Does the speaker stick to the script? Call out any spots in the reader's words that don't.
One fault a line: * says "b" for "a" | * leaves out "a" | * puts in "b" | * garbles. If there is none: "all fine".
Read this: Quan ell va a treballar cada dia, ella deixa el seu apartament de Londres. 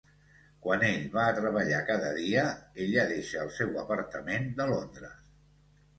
all fine